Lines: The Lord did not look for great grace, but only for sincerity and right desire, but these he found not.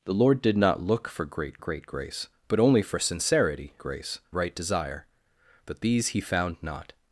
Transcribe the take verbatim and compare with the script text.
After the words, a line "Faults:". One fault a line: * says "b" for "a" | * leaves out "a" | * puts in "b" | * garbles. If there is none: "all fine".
The Lord did not look for great great grace, but only for sincerity grace right desire, but these he found not.
Faults:
* puts in "great"
* says "grace" for "and"